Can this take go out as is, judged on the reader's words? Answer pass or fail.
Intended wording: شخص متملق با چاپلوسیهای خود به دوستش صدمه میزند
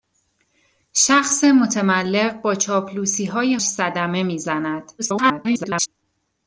fail